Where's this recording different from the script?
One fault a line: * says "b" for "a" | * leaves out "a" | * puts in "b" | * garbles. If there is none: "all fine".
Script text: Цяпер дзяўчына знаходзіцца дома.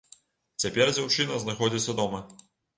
all fine